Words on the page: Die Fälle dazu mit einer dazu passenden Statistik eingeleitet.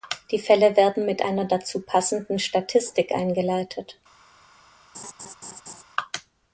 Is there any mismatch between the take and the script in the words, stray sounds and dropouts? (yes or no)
yes